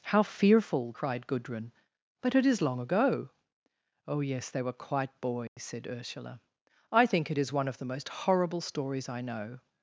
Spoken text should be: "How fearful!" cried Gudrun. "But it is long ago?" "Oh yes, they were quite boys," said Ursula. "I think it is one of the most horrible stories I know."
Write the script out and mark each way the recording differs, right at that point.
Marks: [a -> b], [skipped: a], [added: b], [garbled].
"How fearful!" cried Gudrun. "But it is long ago?" "Oh yes, they were quite boys," said Ursula. "I think it is one of the most horrible stories I know."